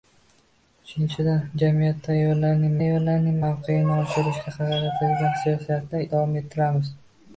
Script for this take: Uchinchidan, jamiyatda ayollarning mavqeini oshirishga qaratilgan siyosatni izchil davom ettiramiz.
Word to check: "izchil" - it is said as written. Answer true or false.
false